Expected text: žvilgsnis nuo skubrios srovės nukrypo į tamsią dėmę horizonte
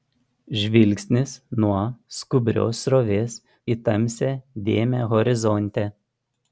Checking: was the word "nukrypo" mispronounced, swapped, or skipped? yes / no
yes